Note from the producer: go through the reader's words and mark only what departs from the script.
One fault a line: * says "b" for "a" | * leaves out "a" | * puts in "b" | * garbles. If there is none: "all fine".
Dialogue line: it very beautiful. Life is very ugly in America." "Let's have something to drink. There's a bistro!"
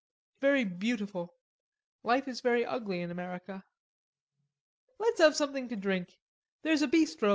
all fine